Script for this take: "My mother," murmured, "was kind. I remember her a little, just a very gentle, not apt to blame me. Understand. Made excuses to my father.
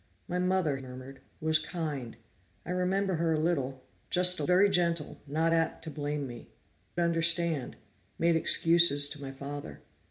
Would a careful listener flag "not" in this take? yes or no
no